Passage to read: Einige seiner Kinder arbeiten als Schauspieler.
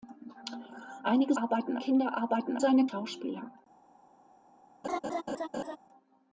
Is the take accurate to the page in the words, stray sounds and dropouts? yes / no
no